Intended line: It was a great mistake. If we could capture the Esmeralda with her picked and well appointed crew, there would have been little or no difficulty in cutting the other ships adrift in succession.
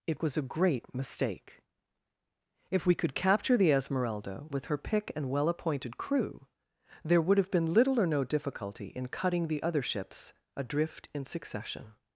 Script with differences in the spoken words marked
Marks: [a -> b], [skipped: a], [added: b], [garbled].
It was a great mistake. If we could capture the Esmeralda with her [picked -> pick] and well appointed crew, there would have been little or no difficulty in cutting the other ships adrift in succession.